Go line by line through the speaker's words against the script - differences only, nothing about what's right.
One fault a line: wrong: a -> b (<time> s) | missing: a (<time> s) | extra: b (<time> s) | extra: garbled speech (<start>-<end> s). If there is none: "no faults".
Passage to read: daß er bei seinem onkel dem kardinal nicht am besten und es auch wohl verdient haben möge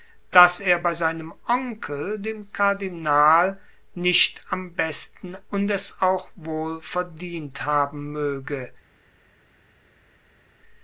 no faults